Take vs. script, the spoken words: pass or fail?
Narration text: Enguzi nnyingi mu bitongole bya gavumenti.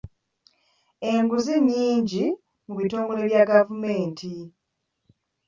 pass